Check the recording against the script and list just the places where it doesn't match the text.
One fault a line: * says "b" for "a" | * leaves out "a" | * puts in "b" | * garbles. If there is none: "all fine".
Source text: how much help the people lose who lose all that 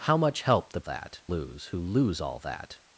* says "that" for "people"